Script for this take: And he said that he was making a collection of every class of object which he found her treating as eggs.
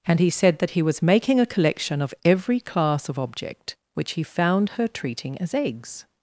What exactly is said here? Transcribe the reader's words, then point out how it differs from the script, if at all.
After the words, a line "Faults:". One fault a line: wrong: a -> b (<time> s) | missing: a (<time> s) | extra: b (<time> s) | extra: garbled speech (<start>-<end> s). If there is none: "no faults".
And he said that he was making a collection of every class of object which he found her treating as eggs.
Faults:
no faults